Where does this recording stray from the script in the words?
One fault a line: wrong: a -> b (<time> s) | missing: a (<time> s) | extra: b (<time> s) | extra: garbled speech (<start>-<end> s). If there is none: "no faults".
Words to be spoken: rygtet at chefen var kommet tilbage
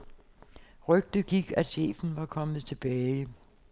extra: gik (1.2 s)